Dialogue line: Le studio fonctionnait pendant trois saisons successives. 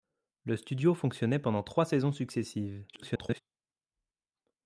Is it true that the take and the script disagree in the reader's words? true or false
true